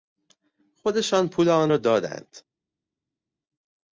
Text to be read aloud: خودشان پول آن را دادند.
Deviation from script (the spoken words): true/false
false